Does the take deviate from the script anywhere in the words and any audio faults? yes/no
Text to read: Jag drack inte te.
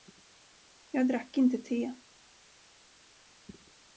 no